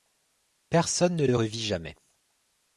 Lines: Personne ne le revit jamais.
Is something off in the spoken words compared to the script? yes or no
no